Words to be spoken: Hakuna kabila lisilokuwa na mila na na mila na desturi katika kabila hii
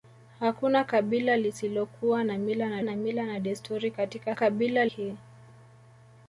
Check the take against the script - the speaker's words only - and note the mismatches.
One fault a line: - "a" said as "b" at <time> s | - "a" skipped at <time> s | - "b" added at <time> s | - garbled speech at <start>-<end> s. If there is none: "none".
none